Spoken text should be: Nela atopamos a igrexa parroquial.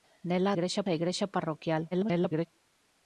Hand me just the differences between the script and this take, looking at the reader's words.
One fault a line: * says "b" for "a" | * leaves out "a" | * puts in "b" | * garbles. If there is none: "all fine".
* says "igrexa" for "atopamos"
* garbles